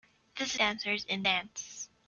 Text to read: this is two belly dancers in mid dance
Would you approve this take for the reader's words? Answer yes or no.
no